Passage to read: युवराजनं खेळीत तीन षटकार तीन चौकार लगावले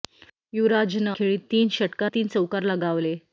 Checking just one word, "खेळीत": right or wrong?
right